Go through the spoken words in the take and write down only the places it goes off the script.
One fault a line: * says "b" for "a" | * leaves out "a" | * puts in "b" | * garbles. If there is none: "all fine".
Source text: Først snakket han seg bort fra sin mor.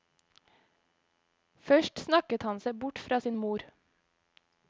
all fine